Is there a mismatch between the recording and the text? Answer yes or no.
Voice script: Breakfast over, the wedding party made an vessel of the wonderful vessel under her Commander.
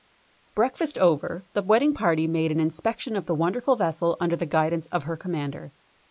yes